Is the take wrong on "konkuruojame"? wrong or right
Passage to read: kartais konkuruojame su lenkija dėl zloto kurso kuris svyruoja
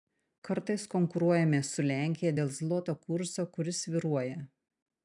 right